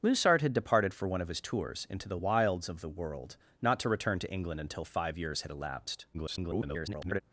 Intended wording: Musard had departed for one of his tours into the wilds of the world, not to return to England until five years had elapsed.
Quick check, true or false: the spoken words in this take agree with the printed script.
false